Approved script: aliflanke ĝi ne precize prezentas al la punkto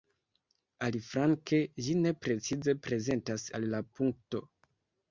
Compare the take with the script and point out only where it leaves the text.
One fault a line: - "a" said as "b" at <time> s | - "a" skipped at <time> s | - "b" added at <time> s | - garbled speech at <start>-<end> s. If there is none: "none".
none